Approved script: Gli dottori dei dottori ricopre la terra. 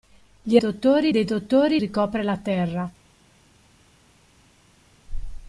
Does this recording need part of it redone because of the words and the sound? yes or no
no